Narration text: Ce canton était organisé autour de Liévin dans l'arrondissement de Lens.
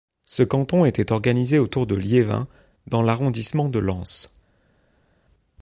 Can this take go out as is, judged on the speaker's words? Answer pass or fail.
pass